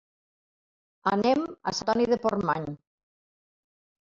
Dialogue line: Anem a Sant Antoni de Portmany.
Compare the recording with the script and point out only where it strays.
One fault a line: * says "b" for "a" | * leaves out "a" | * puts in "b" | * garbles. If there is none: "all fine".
* leaves out "Sant"